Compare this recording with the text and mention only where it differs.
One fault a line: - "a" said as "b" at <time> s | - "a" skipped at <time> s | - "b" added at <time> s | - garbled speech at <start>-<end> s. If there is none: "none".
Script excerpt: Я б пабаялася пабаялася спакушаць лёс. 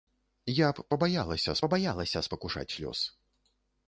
none